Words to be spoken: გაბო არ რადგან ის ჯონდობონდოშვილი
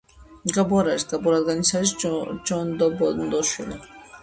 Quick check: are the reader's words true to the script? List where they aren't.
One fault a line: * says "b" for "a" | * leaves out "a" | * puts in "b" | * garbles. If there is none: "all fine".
* puts in "არის გაბო"
* puts in "არის"